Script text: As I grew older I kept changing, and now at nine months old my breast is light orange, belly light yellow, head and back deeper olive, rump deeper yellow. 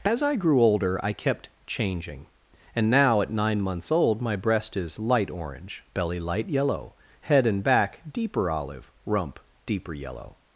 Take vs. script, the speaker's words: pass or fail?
pass